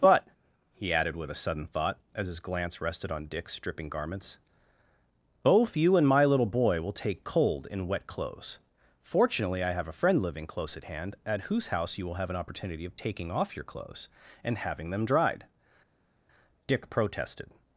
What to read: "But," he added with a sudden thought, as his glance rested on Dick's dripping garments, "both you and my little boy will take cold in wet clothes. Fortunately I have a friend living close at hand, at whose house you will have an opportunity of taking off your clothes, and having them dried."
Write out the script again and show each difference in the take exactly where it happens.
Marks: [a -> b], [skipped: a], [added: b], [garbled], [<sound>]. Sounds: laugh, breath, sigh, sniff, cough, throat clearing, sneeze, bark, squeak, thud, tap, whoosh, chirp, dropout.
"But," he added with a sudden thought, as his glance rested on Dick's dripping garments, "both you and my little boy will take cold in wet clothes. Fortunately I have a friend living close at hand, at whose house you will have an opportunity of taking off your clothes, and having them dried." [added: Dick protested]